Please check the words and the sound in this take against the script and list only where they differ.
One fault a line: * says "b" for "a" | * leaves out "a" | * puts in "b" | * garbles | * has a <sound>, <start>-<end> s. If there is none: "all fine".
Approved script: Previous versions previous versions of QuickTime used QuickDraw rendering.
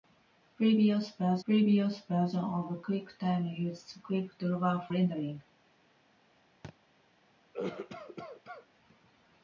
* has a thud, 6.6-6.8 s
* has a cough, 7.5-8.7 s